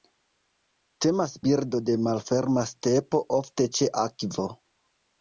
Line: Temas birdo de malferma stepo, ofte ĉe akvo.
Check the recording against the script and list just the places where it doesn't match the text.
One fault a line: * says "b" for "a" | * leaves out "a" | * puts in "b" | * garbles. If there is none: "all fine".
all fine